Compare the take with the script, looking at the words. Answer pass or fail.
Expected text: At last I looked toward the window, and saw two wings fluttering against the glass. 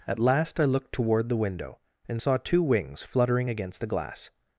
pass